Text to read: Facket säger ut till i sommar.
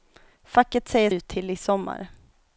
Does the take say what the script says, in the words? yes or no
yes